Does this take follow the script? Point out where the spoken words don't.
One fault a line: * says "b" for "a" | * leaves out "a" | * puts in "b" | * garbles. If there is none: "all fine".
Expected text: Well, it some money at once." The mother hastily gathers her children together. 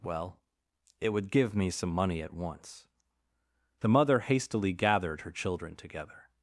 * puts in "would give me"
* says "gathered" for "gathers"